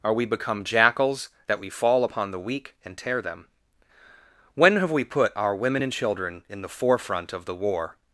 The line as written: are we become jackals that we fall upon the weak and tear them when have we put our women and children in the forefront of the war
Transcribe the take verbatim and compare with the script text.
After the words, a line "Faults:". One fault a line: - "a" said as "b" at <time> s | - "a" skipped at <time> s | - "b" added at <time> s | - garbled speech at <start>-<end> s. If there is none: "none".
are we become jackals that we fall upon the weak and tear them when have we put our women and children in the forefront of the war
Faults:
none